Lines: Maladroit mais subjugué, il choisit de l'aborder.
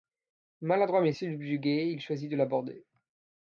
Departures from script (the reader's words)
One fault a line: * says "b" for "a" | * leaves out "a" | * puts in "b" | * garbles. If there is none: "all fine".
all fine